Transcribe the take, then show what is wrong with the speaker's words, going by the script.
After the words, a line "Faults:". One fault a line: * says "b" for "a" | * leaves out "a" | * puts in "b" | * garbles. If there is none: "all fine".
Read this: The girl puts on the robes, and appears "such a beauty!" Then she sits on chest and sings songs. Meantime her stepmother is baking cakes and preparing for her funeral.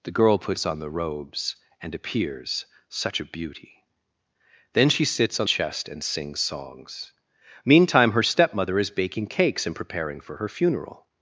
The girl puts on the robes, and appears "such a beauty!" Then she sits on chest and sings songs. Meantime her stepmother is baking cakes and preparing for her funeral.
Faults:
all fine